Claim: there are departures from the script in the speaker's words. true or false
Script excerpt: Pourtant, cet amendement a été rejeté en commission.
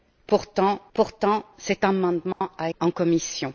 true